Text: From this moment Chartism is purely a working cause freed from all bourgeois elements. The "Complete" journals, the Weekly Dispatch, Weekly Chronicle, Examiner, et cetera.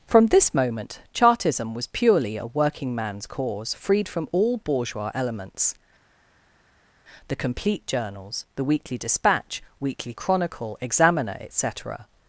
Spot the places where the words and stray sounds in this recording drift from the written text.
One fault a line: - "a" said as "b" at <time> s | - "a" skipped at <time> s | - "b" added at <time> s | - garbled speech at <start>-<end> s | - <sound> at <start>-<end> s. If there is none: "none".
- "is" said as "was" at 1.7 s
- "man's" added at 2.9 s